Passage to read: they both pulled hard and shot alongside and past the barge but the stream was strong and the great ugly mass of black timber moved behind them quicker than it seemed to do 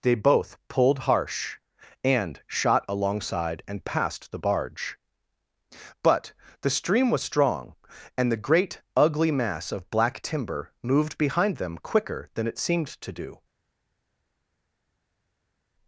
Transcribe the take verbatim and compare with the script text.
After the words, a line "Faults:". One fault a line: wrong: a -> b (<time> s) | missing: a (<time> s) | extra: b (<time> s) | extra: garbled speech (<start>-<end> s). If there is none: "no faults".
they both pulled harsh and shot alongside and past the barge but the stream was strong and the great ugly mass of black timber moved behind them quicker than it seemed to do
Faults:
wrong: hard -> harsh (1.0 s)